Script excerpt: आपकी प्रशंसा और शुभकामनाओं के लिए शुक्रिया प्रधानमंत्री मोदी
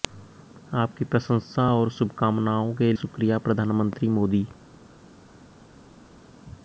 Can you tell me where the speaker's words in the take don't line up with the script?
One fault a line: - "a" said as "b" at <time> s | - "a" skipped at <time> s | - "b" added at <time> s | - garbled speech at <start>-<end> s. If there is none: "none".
- "लिए" skipped at 2.9 s